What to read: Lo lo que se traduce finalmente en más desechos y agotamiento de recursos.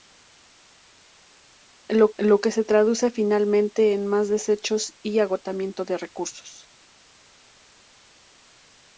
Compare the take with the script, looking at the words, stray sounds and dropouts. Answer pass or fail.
pass